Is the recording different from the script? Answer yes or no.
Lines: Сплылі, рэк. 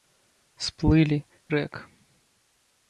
no